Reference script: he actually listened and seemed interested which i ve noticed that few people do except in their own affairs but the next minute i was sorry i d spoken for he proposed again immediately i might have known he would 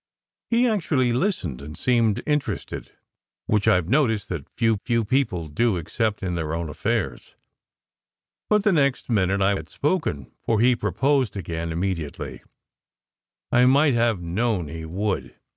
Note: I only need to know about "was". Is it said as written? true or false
false